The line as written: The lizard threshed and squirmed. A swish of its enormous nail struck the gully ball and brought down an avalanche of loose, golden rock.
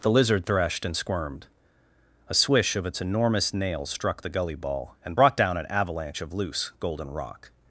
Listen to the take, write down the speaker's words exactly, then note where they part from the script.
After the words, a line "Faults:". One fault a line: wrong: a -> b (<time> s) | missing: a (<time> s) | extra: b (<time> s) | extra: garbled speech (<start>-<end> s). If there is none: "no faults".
The lizard threshed and squirmed. A swish of its enormous nail struck the gully ball and brought down an avalanche of loose, golden rock.
Faults:
no faults